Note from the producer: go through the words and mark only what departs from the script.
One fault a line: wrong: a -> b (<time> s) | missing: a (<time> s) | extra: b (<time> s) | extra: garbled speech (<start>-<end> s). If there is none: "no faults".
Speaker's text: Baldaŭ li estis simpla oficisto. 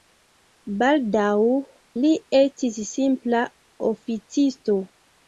no faults